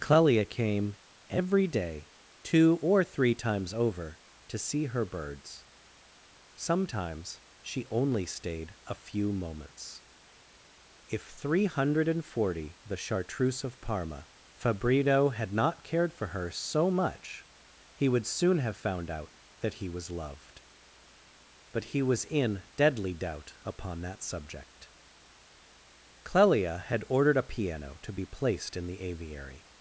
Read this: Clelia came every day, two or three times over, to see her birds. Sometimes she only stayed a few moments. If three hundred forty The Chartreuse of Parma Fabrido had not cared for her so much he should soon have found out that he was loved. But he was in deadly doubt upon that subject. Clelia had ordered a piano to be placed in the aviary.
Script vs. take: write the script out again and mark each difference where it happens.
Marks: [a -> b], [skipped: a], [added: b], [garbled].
Clelia came every day, two or three times over, to see her birds. Sometimes she only stayed a few moments. If three hundred forty The Chartreuse of Parma Fabrido had not cared for her so much he [should -> would] soon have found out that he was loved. But he was in deadly doubt upon that subject. Clelia had ordered a piano to be placed in the aviary.